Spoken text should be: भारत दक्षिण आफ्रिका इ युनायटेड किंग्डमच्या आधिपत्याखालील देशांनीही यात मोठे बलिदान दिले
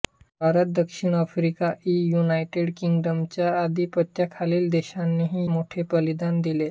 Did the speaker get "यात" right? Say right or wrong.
wrong